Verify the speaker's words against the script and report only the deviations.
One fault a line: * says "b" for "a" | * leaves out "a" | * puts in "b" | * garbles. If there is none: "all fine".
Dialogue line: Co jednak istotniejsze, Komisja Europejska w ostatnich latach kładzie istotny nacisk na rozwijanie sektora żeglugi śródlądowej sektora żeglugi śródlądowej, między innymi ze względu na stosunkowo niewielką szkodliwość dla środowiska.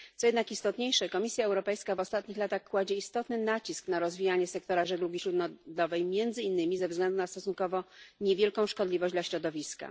* leaves out "sektora żeglugi śródlądowej"